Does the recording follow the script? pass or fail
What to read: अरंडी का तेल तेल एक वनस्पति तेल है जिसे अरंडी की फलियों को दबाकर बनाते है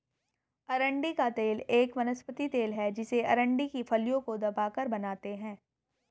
fail